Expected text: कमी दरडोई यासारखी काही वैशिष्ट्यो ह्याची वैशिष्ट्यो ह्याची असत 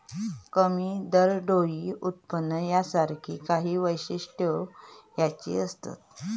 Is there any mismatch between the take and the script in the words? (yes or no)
yes